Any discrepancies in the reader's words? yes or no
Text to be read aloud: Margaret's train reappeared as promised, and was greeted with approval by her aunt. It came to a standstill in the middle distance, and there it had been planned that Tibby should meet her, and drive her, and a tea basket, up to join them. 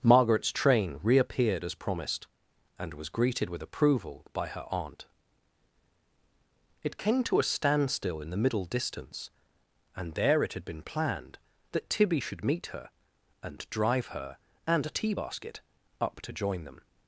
no